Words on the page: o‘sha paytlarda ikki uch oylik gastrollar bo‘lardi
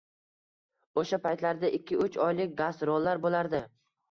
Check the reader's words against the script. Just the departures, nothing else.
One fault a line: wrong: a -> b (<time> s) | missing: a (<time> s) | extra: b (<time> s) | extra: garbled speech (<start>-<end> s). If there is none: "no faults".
no faults